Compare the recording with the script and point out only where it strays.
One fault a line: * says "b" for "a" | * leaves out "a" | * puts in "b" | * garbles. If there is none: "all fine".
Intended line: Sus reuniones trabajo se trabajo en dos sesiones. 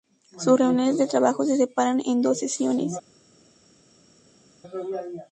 * puts in "de"
* says "separan" for "trabajo"